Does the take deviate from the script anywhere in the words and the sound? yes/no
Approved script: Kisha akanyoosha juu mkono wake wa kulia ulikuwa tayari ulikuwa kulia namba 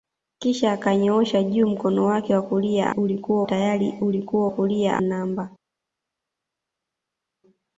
no